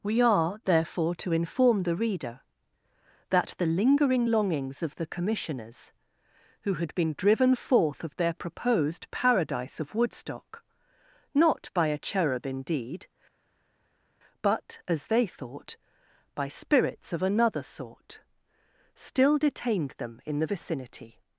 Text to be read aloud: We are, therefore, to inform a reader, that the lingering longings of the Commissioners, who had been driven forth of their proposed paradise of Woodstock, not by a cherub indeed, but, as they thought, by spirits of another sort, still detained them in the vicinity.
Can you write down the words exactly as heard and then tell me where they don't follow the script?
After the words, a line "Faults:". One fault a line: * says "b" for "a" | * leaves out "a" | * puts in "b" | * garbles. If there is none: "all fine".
We are, therefore, to inform the reader, that the lingering longings of the Commissioners, who had been driven forth of their proposed paradise of Woodstock, not by a cherub indeed, but, as they thought, by spirits of another sort, still detained them in the vicinity.
Faults:
* says "the" for "a"